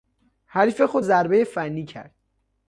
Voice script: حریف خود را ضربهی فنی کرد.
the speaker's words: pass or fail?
fail